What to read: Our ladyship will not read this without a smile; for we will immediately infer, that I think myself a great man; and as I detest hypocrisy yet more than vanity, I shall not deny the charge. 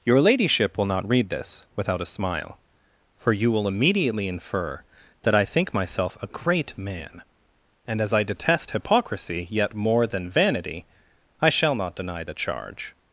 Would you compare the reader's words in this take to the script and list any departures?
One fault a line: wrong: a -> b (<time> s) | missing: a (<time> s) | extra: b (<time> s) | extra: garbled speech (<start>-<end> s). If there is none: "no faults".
wrong: Our -> Your (0.0 s)
wrong: we -> you (3.3 s)